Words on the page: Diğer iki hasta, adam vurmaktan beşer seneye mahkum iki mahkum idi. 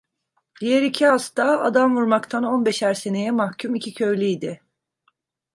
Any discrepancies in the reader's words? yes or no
yes